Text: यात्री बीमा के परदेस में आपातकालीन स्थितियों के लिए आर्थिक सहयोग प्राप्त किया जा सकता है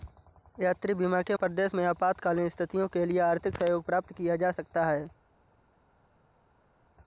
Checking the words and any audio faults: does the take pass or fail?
pass